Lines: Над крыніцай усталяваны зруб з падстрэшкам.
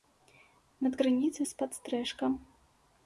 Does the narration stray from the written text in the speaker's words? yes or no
yes